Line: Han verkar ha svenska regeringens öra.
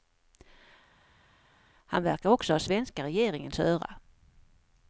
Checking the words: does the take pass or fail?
fail